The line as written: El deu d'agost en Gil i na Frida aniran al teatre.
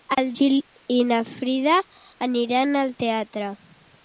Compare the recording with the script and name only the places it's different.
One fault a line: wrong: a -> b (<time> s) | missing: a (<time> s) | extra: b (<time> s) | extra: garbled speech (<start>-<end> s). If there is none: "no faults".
missing: deu d'agost en (0.3 s)